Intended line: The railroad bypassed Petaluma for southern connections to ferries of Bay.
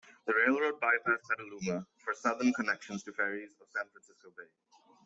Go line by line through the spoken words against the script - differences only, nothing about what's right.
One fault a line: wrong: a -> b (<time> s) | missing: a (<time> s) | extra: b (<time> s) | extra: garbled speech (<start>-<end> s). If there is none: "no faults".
extra: San Francisco (3.7 s)